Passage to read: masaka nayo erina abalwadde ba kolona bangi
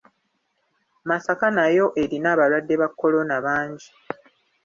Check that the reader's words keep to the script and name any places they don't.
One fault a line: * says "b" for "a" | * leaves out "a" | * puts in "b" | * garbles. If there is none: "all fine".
all fine